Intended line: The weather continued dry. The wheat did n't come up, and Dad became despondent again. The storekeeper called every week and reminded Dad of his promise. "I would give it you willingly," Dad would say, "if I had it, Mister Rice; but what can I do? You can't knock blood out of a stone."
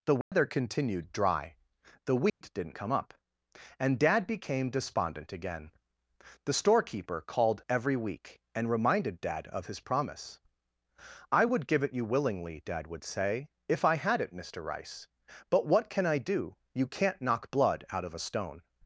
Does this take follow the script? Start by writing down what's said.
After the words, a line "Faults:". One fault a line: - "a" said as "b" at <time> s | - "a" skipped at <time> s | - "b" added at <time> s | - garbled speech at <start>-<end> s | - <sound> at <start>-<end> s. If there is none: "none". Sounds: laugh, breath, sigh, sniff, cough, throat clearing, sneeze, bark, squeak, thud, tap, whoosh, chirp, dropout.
The weather continued dry. The wheat did n't come up, and Dad became despondent again. The storekeeper called every week and reminded Dad of his promise. "I would give it you willingly," Dad would say, "if I had it, Mister Rice; but what can I do? You can't knock blood out of a stone."
Faults:
- dropout at 0.2-0.3 s
- dropout at 2.3-2.4 s